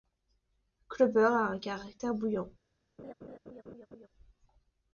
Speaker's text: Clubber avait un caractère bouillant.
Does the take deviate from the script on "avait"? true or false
true